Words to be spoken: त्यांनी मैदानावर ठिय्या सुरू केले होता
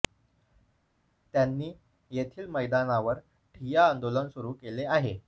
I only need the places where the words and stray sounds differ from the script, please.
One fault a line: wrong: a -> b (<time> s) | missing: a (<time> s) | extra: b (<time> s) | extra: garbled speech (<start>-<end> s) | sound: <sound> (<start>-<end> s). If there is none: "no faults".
extra: येथील (2.1 s)
extra: आंदोलन (3.9 s)
wrong: होता -> आहे (4.9 s)